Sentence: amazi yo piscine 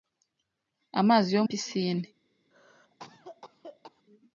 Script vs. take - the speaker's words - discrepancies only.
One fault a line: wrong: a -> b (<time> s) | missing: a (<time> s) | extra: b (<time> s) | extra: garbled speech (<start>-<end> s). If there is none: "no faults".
no faults